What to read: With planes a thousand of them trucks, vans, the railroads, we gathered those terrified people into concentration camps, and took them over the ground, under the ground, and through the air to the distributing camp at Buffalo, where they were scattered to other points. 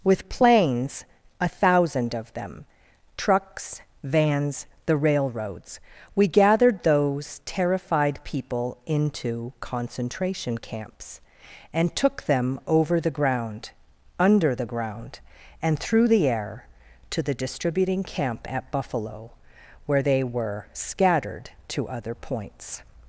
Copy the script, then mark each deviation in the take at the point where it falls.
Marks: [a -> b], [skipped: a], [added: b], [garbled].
With planes a thousand of them trucks, vans, the railroads, we gathered those terrified people into concentration camps, and took them over the ground, under the ground, and through the air to the distributing camp at Buffalo, where they were scattered to other points.